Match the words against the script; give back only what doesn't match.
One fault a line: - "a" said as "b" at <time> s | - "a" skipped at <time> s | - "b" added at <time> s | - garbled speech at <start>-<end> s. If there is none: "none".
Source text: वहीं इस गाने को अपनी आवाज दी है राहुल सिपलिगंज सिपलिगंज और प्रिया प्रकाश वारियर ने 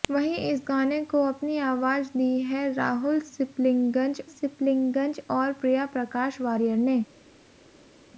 none